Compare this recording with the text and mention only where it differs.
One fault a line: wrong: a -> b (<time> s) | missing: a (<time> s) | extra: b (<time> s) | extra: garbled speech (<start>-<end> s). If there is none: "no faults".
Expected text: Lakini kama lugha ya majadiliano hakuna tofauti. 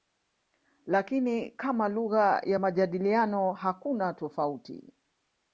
no faults